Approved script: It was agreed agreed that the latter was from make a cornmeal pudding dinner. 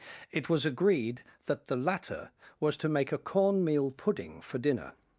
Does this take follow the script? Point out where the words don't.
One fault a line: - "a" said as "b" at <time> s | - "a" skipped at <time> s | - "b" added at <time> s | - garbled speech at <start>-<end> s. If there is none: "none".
- "agreed" skipped at 1.2 s
- "from" said as "to" at 2.8 s
- "for" added at 4.4 s